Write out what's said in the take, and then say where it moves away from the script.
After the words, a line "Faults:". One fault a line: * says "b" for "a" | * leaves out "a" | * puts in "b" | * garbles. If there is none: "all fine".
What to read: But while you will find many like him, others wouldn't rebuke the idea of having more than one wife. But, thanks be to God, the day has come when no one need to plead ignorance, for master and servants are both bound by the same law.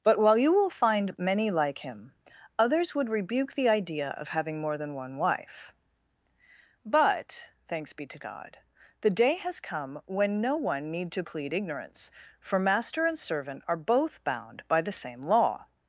But while you will find many like him, others would rebuke the idea of having more than one wife. But, thanks be to God, the day has come when no one need to plead ignorance, for master and servant are both bound by the same law.
Faults:
* says "would" for "wouldn't"
* says "servant" for "servants"